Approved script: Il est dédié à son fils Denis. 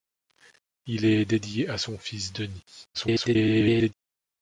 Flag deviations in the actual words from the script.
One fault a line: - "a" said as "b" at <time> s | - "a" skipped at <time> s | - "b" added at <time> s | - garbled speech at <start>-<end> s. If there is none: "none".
- garbled speech at 2.9-3.9 s